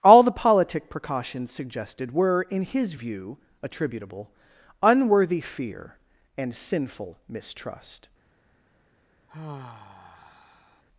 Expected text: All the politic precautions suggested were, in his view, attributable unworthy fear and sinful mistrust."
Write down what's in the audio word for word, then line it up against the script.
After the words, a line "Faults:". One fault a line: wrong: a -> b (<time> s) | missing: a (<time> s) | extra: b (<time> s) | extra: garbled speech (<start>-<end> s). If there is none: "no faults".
All the politic precautions suggested were, in his view, attributable unworthy fear and sinful mistrust."
Faults:
no faults